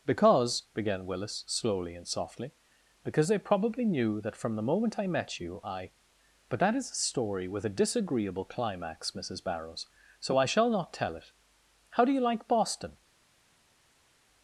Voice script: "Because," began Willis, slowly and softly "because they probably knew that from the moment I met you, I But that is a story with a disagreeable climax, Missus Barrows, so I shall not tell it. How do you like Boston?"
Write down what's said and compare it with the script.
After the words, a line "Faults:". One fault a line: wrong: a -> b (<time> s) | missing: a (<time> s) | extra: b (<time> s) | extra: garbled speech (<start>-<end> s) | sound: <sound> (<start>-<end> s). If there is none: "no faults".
"Because," began Willis, slowly and softly "because they probably knew that from the moment I met you, I But that is a story with a disagreeable climax, Missus Barrows, so I shall not tell it. How do you like Boston?"
Faults:
no faults